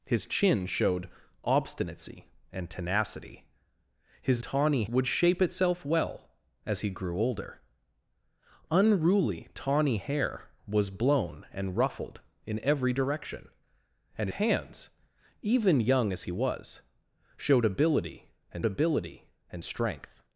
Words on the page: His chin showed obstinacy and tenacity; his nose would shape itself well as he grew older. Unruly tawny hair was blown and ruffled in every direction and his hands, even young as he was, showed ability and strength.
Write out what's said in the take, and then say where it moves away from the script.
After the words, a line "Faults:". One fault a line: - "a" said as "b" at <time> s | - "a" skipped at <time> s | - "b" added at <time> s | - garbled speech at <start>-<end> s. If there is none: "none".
His chin showed obstinacy and tenacity; his tawny would shape itself well as he grew older. Unruly tawny hair was blown and ruffled in every direction and hands, even young as he was, showed ability and ability and strength.
Faults:
- "nose" said as "tawny" at 4.4 s
- "his" skipped at 14.3 s
- "ability and" added at 18.6 s